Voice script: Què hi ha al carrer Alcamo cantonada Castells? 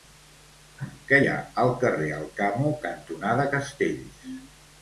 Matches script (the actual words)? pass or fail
pass